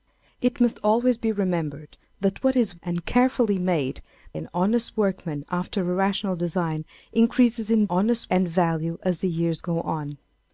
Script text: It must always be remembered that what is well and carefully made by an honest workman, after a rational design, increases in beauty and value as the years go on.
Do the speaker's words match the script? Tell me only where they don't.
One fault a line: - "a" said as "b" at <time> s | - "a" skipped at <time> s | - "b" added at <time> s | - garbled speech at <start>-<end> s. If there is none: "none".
- "well" skipped at 2.8 s
- "by" skipped at 4.0 s
- "beauty" said as "honest" at 7.9 s